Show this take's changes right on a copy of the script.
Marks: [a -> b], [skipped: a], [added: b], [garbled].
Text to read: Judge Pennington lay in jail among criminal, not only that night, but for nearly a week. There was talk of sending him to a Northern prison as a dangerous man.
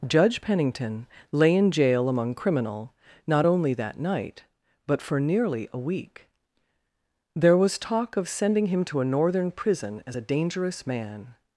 Judge Pennington lay in jail among criminal, not only that night, but for nearly a week. There was talk of sending him to a Northern prison as a dangerous man.